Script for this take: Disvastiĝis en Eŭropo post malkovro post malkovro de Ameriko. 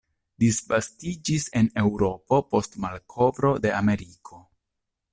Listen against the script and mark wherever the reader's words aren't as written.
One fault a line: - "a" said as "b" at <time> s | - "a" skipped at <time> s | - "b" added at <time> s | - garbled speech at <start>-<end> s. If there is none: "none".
- "post malkovro" skipped at 3.5 s